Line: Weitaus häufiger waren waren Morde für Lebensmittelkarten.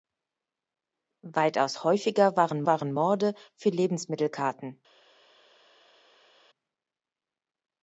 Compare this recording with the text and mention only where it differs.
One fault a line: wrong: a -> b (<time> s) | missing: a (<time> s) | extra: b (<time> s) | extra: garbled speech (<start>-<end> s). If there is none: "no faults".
no faults